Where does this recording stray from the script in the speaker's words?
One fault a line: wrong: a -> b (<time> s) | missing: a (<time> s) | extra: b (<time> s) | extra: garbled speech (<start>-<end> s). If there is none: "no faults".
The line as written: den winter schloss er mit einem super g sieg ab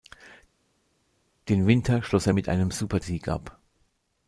missing: g (3.0 s)